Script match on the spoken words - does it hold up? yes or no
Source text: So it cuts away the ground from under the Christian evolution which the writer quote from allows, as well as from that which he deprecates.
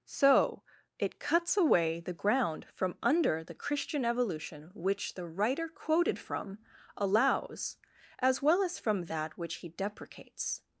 no